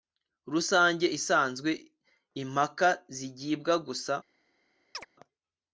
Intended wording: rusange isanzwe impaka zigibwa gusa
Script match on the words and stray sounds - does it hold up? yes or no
no